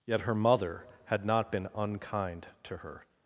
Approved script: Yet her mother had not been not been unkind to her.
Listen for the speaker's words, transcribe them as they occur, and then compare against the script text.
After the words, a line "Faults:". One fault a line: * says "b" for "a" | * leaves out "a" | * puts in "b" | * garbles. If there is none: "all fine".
Yet her mother had not been unkind to her.
Faults:
* leaves out "not been"